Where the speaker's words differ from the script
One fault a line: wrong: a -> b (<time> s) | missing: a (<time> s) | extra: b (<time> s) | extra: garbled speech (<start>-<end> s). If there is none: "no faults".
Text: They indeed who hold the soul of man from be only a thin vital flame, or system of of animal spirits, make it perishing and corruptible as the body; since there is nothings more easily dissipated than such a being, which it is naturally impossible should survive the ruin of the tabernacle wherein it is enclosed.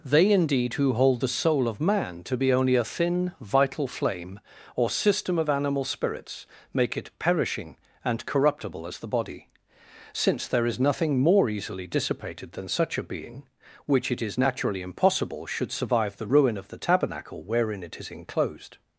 wrong: from -> to (2.2 s)
missing: of (5.5 s)
wrong: nothings -> nothing (10.8 s)